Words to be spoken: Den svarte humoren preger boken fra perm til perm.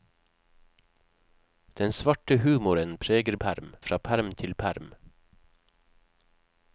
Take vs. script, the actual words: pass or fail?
fail